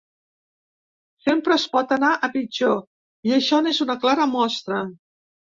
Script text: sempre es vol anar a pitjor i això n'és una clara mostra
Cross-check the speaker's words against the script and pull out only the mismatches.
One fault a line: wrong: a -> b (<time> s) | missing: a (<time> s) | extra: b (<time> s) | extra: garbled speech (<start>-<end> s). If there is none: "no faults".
wrong: vol -> pot (1.7 s)